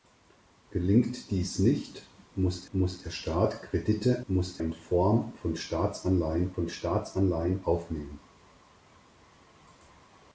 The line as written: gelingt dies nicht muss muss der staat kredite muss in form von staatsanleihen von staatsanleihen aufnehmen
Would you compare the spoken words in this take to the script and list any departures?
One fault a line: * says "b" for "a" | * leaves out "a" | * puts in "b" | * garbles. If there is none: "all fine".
all fine